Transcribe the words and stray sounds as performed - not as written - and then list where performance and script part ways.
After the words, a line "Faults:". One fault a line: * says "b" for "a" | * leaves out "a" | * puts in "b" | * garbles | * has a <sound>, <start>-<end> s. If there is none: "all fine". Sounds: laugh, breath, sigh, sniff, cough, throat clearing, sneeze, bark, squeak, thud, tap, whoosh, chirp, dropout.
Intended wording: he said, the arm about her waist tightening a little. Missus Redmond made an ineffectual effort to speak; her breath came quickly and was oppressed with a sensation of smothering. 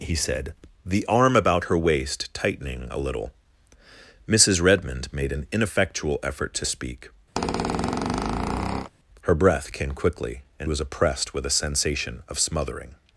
he said, the arm about her waist tightening a little. Missus Redmond made an ineffectual effort to speak; her breath came quickly and was oppressed with a sensation of smothering.
Faults:
* has a squeak, 7.4-8.9 s